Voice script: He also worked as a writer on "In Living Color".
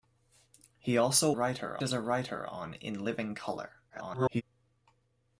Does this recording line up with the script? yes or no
no